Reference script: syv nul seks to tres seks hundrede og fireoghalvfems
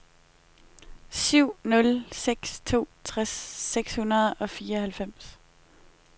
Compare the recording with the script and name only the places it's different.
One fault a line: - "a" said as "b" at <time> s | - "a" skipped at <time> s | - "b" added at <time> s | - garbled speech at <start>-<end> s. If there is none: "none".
none